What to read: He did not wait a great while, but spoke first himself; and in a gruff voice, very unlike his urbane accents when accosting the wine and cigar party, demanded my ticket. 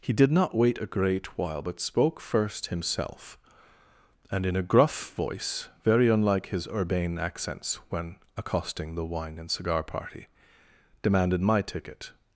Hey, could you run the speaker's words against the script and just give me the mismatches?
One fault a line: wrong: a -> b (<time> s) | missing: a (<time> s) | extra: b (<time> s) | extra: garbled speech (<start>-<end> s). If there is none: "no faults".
no faults